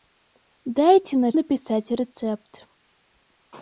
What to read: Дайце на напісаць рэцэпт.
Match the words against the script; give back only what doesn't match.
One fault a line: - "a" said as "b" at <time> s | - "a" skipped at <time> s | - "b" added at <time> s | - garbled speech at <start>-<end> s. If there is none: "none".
none